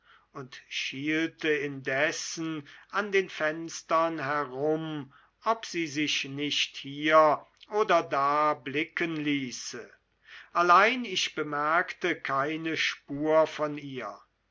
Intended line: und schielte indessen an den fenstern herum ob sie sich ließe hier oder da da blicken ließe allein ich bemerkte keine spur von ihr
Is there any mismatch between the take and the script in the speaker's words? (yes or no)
yes